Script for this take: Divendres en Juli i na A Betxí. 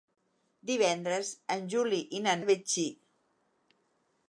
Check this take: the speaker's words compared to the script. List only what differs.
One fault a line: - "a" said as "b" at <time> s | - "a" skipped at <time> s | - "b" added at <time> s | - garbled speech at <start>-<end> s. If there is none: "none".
none